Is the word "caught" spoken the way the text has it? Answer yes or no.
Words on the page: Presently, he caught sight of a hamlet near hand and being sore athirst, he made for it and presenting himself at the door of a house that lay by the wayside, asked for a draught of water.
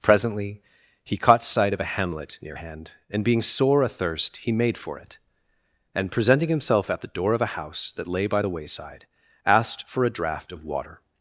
yes